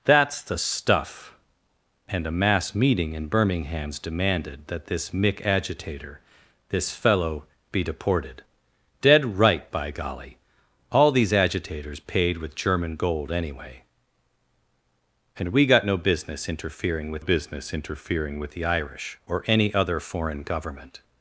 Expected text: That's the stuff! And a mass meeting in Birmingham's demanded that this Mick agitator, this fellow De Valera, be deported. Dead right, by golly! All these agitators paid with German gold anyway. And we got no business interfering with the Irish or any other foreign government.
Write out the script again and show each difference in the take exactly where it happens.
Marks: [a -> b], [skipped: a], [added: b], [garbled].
That's the stuff! And a mass meeting in Birmingham's demanded that this Mick agitator, this fellow [skipped: De Valera,] be deported. Dead right, by golly! All these agitators paid with German gold anyway. And we got no business interfering with [added: business interfering with] the Irish or any other foreign government.